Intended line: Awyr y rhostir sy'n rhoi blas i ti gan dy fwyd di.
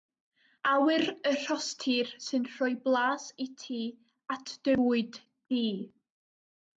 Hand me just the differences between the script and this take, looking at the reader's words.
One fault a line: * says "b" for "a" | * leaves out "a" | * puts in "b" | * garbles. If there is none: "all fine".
* says "at" for "gan"